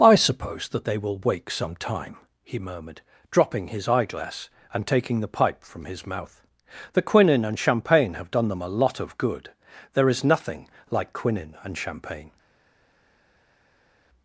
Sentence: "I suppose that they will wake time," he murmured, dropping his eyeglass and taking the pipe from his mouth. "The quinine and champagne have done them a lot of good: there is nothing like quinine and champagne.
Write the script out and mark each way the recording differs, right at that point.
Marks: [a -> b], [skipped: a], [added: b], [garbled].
"I suppose that they will wake [added: some] time," he murmured, dropping his eyeglass and taking the pipe from his mouth. "The quinine and champagne have done them a lot of good: there is nothing like quinine and champagne.